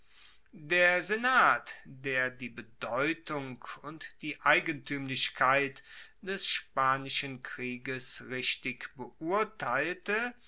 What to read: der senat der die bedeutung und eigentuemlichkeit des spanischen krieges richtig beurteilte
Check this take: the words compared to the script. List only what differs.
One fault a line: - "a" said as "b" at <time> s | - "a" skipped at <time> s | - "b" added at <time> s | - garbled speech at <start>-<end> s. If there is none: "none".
- "die" added at 4.2 s